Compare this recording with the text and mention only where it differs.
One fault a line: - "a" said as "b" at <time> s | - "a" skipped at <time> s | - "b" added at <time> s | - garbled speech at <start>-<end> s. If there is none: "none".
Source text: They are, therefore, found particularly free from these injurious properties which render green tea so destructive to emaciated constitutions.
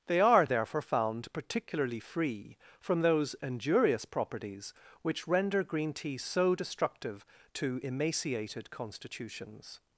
- "these" said as "those" at 3.0 s